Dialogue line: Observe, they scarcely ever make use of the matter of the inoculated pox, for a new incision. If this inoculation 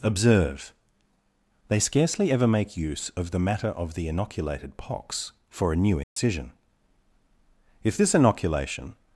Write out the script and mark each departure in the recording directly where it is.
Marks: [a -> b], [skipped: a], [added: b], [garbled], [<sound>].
Observe, they scarcely ever make use of the matter of the inoculated pox, for a new incision. [dropout] If this inoculation